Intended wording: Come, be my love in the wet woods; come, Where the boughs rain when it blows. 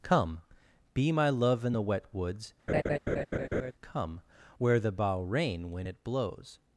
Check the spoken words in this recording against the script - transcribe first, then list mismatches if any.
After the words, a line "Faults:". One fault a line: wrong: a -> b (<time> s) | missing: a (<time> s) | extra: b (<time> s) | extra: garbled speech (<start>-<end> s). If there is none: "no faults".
Come, be my love in the wet woods; come, Where the bough rain when it blows.
Faults:
wrong: boughs -> bough (4.9 s)